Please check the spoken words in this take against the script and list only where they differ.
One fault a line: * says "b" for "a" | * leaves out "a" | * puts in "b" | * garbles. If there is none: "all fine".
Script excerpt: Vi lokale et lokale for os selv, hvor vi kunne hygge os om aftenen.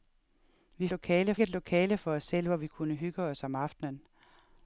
all fine